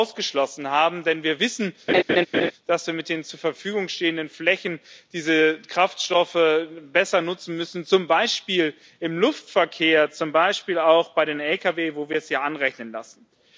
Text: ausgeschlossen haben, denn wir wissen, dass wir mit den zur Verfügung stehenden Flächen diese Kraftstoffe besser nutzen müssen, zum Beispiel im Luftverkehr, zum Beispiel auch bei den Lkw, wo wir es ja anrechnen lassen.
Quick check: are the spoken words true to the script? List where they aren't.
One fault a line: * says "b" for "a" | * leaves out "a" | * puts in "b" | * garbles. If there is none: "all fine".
all fine